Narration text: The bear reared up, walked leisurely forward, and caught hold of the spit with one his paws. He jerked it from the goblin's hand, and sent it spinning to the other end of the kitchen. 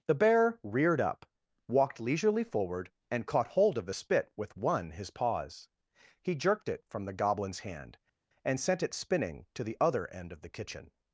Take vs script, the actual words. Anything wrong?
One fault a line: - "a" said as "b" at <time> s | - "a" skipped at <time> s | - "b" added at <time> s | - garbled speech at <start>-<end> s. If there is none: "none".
none